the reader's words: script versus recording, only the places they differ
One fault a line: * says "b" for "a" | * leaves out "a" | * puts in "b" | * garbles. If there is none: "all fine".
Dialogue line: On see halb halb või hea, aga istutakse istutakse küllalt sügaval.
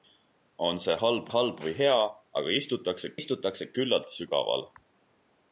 all fine